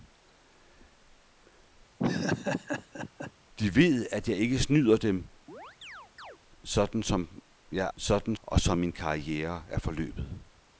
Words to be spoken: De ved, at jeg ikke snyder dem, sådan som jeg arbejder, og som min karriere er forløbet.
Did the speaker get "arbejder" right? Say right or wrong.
wrong